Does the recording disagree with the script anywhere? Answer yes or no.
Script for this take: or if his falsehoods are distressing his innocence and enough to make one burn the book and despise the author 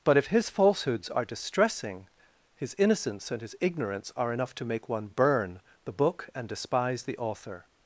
yes